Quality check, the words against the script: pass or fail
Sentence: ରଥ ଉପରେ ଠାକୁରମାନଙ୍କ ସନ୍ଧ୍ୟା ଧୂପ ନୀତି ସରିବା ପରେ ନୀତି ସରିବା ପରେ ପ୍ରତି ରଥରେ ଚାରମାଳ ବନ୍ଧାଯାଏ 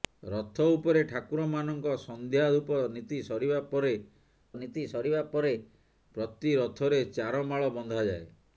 pass